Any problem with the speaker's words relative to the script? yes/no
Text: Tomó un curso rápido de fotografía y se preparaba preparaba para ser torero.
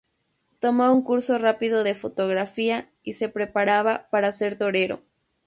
yes